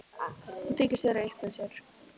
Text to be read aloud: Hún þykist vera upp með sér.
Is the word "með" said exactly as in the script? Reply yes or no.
yes